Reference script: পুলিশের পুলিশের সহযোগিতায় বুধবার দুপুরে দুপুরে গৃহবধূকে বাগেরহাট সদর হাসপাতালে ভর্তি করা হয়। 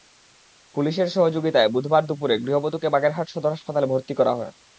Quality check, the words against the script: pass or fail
fail